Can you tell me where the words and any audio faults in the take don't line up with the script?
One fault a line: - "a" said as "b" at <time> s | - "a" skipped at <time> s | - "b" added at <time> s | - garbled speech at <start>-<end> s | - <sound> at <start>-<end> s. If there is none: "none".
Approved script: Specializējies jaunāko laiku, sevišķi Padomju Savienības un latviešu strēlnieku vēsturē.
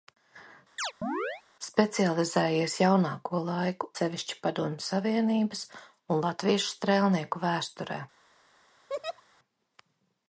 - chirp at 0.8-1.4 s
- laugh at 8.9-9.2 s